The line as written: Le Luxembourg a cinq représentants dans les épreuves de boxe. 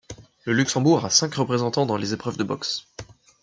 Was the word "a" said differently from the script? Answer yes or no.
no